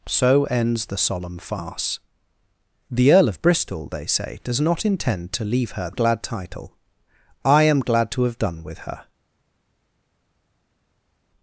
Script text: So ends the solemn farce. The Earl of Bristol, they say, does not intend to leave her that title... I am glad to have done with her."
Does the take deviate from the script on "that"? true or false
true